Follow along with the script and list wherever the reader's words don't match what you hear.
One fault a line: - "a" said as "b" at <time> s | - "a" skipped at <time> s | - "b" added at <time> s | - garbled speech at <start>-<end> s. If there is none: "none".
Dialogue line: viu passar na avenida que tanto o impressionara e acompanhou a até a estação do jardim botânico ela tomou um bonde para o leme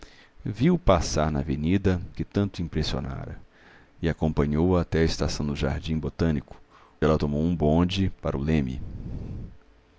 none